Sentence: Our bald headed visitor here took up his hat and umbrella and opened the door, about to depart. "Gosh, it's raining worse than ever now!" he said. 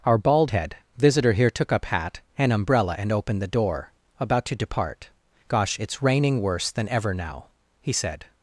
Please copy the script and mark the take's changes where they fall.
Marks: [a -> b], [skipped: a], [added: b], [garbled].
Our bald [headed -> head] visitor here took up [skipped: his] hat and umbrella and opened the door, about to depart. "Gosh, it's raining worse than ever now!" he said.